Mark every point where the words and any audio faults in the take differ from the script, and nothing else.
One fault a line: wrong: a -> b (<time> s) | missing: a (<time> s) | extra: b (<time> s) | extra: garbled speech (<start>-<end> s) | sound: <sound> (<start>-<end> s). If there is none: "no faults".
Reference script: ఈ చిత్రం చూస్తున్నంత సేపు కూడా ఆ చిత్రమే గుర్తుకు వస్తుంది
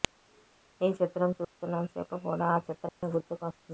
sound: dropout (1.4-1.6 s)
sound: dropout (2.9-3.0 s)